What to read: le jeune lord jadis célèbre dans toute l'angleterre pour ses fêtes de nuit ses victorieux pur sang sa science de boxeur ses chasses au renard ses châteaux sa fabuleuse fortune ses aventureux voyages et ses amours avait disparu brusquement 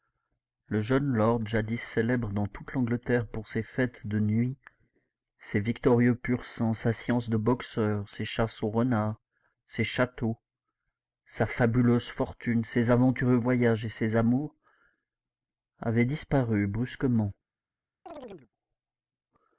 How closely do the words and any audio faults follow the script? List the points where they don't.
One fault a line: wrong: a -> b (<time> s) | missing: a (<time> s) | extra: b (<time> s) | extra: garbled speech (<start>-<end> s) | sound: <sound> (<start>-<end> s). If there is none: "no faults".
sound: chirp (18.1-18.5 s)